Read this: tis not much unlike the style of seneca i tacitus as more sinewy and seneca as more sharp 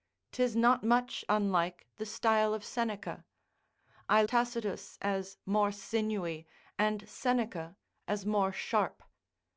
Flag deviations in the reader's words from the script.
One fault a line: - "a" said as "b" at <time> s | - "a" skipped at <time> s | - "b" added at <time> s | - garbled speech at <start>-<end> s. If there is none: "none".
none